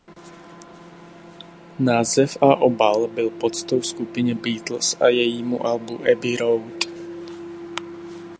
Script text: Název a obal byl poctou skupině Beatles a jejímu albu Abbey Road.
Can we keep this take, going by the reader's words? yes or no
yes